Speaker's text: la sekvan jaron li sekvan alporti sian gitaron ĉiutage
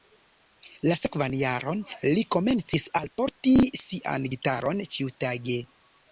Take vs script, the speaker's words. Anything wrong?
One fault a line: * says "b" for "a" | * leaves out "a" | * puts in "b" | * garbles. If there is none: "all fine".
* says "komencis" for "sekvan"